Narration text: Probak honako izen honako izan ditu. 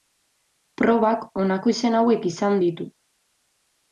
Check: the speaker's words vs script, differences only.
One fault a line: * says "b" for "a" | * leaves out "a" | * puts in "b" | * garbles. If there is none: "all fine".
* says "hauek" for "honako"